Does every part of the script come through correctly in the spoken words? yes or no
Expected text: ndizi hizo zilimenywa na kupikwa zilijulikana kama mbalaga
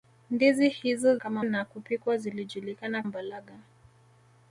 no